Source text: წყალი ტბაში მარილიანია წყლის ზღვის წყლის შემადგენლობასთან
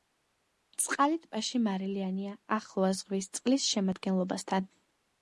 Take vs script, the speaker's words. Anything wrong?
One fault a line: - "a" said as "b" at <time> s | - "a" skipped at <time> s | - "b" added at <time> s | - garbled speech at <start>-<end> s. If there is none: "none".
- "წყლის" said as "ახლოა" at 2.6 s